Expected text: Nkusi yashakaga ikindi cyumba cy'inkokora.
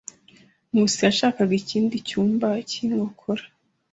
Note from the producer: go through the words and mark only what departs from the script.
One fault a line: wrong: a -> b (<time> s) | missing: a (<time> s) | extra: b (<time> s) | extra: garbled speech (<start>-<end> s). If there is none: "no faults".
no faults